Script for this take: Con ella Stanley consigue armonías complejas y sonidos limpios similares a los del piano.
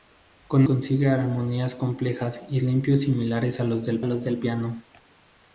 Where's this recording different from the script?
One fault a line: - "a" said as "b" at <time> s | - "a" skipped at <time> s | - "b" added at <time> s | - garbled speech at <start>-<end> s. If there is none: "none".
- "ella Stanley" skipped at 0.7 s
- "sonidos" skipped at 2.6 s
- "los del" added at 4.0 s